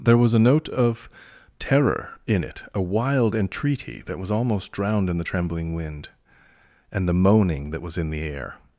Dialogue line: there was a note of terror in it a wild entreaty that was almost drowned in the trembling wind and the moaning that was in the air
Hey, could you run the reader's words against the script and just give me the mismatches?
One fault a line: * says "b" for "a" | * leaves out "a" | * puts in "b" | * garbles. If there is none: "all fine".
all fine